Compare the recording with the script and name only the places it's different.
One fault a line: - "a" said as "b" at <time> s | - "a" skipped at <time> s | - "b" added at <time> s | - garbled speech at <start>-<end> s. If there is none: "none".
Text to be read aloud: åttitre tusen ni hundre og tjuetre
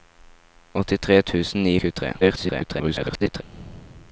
- "hundre" skipped at 1.8 s
- garbled speech at 2.2-3.4 s